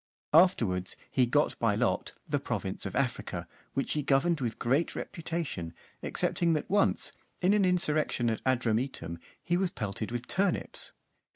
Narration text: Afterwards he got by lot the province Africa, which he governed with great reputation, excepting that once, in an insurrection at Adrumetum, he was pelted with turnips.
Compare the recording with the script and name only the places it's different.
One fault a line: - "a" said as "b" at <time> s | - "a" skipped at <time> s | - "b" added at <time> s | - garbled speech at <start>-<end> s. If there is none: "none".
- "of" added at 2.8 s